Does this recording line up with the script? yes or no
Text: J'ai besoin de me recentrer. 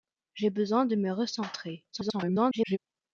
no